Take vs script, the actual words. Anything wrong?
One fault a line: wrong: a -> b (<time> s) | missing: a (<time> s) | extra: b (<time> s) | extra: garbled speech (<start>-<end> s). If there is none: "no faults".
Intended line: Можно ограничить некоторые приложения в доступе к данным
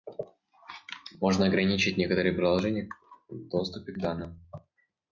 no faults